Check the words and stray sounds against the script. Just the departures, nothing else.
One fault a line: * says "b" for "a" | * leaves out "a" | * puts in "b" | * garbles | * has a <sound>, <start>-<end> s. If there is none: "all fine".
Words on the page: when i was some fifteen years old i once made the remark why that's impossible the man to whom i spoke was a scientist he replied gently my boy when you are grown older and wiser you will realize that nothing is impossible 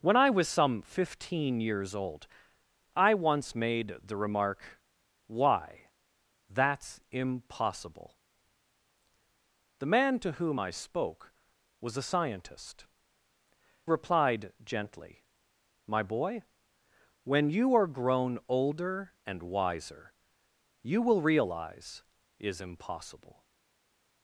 * leaves out "he"
* leaves out "that nothing"